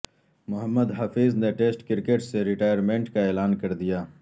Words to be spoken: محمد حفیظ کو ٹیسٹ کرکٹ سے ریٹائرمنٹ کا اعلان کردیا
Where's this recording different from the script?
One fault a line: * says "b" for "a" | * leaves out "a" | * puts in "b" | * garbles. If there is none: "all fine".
* says "نے" for "کو"